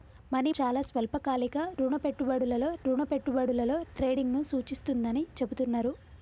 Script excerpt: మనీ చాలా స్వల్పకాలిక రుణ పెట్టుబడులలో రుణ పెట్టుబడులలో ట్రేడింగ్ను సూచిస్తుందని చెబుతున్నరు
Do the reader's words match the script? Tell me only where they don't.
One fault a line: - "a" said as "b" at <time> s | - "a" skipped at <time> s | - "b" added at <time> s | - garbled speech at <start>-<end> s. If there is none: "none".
none